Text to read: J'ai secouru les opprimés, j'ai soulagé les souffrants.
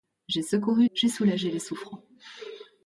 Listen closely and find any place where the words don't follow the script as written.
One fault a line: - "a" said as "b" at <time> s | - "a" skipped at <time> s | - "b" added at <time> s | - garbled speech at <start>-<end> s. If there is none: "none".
- "les opprimés" skipped at 0.9 s